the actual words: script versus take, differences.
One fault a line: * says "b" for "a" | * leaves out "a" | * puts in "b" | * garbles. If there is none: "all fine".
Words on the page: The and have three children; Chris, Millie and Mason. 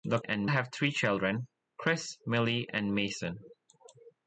all fine